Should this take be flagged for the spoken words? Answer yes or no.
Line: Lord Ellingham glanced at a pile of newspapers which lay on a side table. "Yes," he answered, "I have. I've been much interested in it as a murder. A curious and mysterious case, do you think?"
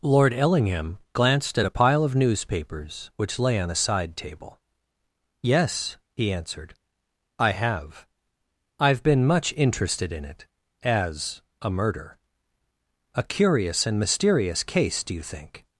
no